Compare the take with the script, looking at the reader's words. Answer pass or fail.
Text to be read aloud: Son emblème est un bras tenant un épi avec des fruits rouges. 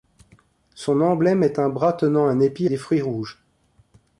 fail